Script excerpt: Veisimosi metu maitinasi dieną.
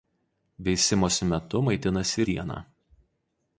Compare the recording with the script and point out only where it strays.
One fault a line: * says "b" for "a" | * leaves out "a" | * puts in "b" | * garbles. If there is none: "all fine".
all fine